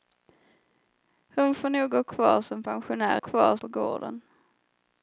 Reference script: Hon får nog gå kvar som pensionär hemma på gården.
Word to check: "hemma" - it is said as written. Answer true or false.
false